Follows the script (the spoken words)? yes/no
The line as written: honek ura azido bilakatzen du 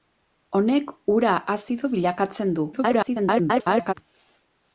no